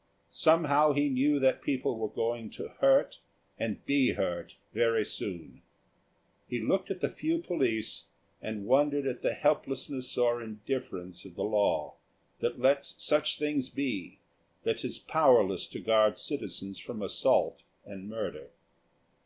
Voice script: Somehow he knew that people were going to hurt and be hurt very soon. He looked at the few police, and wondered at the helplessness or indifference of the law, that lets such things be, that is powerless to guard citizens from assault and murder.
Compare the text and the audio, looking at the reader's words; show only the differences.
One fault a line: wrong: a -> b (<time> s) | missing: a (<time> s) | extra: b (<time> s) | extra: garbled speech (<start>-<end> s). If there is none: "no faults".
no faults